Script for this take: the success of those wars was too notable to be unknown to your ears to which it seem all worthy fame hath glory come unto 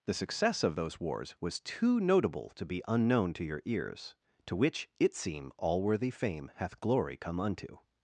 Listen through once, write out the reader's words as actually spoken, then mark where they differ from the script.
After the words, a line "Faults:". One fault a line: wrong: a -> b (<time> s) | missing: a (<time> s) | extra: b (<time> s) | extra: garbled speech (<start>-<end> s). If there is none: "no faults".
the success of those wars was too notable to be unknown to your ears to which it seem all worthy fame hath glory come unto
Faults:
no faults